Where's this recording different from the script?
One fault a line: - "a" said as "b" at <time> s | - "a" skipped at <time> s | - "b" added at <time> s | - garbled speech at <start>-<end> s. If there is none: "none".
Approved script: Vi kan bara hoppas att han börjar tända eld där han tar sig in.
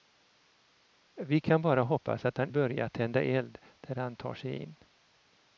none